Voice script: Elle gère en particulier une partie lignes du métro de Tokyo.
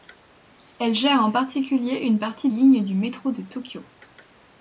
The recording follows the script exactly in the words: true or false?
true